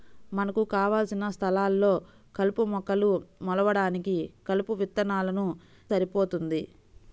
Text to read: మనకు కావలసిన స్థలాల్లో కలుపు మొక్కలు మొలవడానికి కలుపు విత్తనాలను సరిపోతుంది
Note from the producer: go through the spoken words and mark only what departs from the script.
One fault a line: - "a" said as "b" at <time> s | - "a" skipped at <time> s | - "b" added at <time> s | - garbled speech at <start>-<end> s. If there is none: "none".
none